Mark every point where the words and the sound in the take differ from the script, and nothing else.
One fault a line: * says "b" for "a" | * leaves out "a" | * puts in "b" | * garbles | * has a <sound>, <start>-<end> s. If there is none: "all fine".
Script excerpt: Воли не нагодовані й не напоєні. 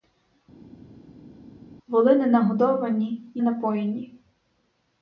* leaves out "не"